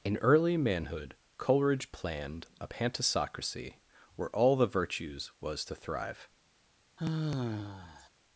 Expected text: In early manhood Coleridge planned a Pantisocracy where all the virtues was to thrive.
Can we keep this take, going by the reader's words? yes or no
yes